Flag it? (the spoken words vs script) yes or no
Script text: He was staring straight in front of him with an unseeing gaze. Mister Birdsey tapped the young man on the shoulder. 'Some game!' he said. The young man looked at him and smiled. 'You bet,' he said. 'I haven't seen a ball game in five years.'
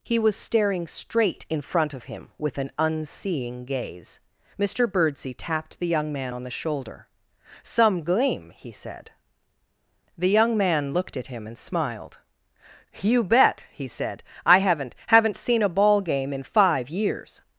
yes